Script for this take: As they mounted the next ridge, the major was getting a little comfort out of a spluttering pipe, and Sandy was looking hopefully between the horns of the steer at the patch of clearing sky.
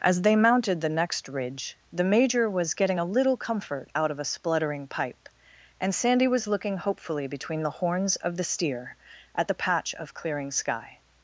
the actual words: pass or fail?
pass